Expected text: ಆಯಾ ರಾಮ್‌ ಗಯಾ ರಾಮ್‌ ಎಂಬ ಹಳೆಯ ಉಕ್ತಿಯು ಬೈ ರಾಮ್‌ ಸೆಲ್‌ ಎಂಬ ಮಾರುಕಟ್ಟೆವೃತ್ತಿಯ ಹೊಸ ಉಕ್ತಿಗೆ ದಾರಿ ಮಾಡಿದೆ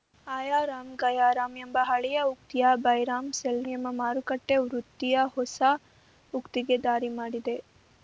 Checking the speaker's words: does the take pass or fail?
pass